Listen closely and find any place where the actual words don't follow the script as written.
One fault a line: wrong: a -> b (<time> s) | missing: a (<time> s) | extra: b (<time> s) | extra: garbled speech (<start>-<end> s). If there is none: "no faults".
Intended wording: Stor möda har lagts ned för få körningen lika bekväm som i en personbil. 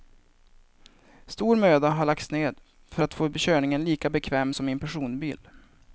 extra: att (3.0 s)